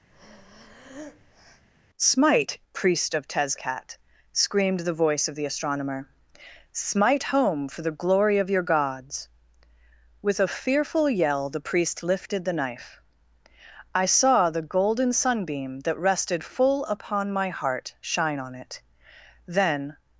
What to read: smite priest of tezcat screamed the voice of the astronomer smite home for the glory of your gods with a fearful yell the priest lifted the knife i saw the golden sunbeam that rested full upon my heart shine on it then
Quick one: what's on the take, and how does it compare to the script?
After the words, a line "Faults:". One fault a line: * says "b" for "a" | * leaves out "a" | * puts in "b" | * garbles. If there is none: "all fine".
smite priest of tezcat screamed the voice of the astronomer smite home for the glory of your gods with a fearful yell the priest lifted the knife i saw the golden sunbeam that rested full upon my heart shine on it then
Faults:
all fine